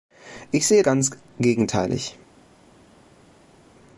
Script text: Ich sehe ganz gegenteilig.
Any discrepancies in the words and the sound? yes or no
no